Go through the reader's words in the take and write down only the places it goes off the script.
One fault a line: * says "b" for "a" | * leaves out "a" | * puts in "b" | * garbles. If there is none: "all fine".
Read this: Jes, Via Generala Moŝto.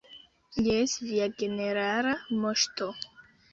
all fine